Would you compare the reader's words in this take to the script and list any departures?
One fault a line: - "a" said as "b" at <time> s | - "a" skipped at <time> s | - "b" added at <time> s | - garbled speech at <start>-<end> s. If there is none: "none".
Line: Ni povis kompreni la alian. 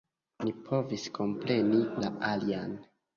none